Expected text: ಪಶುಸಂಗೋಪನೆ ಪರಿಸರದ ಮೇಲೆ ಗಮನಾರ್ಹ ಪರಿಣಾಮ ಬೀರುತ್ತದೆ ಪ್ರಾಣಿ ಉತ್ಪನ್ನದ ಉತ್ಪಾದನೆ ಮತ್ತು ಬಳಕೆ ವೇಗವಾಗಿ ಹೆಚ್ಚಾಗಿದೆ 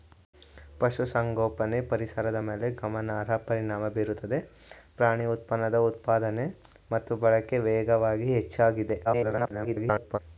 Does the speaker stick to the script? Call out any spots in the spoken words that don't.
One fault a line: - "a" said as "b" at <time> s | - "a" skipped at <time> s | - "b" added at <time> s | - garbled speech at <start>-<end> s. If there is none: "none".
- garbled speech at 9.0-10.2 s